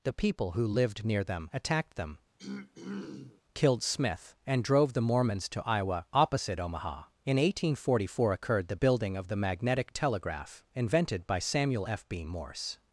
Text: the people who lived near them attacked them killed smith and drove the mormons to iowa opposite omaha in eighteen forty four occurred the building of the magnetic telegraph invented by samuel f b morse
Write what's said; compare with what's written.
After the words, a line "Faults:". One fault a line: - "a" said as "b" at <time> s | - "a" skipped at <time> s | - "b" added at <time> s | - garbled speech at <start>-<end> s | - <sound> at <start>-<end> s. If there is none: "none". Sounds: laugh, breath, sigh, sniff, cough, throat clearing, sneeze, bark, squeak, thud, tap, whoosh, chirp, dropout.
the people who lived near them attacked them killed smith and drove the mormons to iowa opposite omaha in eighteen forty four occurred the building of the magnetic telegraph invented by samuel f b morse
Faults:
- throat clearing at 2.4-3.4 s